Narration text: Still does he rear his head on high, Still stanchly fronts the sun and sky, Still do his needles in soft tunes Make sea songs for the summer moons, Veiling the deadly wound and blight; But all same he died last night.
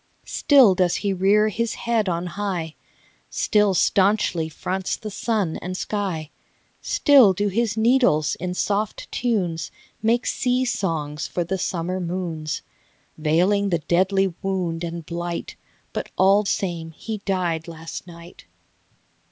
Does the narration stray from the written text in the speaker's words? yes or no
no